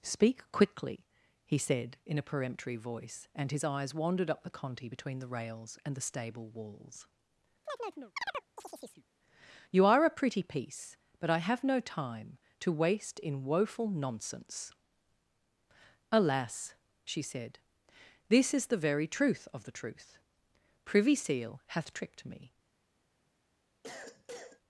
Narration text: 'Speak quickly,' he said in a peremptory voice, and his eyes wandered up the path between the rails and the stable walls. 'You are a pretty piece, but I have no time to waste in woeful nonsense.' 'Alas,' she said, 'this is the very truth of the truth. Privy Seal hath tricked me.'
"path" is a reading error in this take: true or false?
true